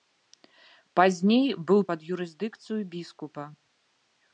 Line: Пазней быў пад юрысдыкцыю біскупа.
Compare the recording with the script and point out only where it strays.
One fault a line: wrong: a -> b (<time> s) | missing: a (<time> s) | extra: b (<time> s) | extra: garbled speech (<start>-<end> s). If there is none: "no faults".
no faults